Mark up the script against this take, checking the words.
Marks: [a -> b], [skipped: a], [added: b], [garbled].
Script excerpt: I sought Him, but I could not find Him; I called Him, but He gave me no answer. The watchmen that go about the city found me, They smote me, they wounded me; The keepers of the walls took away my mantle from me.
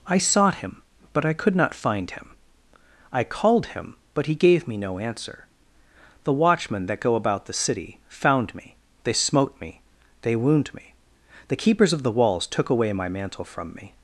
I sought Him, but I could not find Him; I called Him, but He gave me no answer. The watchmen that go about the city found me, They smote me, they [wounded -> wound] me; The keepers of the walls took away my mantle from me.